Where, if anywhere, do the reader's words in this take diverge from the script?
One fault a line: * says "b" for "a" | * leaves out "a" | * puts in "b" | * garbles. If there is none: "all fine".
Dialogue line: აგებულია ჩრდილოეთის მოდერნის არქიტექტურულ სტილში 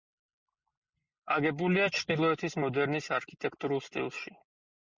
all fine